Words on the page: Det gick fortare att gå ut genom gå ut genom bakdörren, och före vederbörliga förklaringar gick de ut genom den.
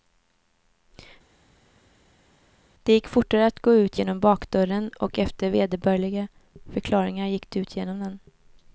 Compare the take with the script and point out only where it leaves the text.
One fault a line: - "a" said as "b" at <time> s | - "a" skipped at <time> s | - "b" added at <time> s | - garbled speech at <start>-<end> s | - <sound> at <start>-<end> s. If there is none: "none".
- "gå ut genom" skipped at 4.2 s
- "före" said as "efter" at 5.2 s